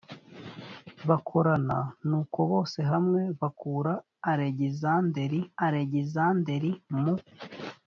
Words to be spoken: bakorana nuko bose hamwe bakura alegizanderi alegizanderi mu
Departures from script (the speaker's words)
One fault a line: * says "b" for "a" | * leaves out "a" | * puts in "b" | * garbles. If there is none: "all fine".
all fine